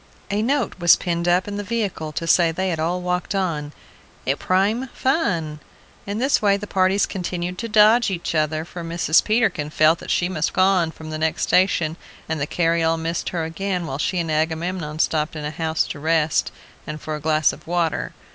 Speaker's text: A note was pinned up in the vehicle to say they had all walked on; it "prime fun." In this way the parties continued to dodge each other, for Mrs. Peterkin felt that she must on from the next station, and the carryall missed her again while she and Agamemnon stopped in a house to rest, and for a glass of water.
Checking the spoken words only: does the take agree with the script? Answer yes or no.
yes